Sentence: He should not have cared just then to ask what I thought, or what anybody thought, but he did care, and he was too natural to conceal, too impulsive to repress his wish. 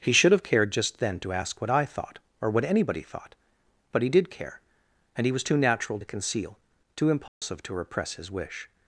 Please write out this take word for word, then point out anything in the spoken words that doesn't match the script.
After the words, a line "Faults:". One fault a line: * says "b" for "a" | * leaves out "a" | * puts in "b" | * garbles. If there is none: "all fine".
He should have cared just then to ask what I thought, or what anybody thought, but he did care, and he was too natural to conceal, too impulsive to repress his wish.
Faults:
* leaves out "not"